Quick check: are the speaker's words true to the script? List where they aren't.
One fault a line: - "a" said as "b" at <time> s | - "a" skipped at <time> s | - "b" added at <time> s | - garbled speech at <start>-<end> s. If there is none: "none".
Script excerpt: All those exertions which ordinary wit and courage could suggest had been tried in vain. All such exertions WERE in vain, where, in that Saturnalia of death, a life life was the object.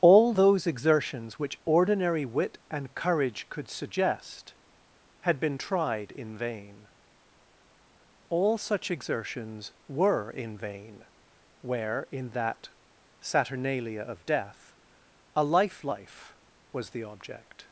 none